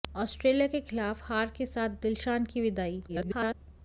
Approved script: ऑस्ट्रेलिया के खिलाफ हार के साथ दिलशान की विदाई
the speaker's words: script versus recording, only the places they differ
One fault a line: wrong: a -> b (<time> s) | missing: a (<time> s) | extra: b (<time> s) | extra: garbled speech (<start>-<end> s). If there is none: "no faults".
extra: garbled speech (3.1-3.5 s)